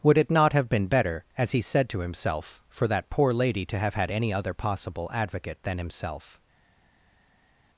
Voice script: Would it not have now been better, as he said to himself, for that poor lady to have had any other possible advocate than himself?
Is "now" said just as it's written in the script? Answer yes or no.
no